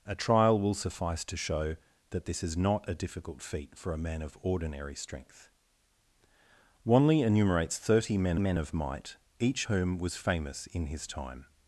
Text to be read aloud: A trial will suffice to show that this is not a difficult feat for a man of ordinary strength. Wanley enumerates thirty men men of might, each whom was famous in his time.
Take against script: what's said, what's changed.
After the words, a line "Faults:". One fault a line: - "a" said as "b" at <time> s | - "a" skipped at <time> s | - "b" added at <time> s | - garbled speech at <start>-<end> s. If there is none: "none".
A trial will suffice to show that this is not a difficult feat for a man of ordinary strength. Wanley enumerates thirty men men of might, each whom was famous in his time.
Faults:
none